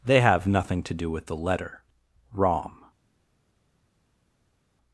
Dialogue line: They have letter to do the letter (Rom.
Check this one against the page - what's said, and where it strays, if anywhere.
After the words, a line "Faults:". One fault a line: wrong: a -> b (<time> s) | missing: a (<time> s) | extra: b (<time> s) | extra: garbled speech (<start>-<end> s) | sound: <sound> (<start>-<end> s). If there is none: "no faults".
They have nothing to do with the letter (Rom.
Faults:
wrong: letter -> nothing (0.5 s)
extra: with (1.1 s)